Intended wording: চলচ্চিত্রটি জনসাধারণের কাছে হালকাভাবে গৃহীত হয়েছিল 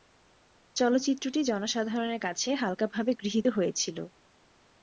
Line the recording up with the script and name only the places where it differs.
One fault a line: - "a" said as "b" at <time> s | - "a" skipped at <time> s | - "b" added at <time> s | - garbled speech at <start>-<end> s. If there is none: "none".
none